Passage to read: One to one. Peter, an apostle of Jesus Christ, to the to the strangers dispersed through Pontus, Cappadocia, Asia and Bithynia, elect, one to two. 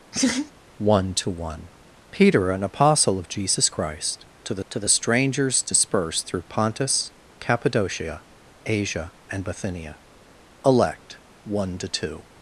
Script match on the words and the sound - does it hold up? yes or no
no